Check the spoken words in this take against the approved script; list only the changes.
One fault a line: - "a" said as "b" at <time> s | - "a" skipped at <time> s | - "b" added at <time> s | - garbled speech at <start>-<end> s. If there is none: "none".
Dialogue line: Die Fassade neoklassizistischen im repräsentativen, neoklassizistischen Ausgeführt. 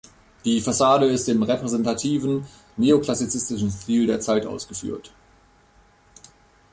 - "neoklassizistischen" said as "ist" at 1.1 s
- "Stil der Zeit" added at 3.7 s